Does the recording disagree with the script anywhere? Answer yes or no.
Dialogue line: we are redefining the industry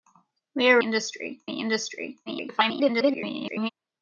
yes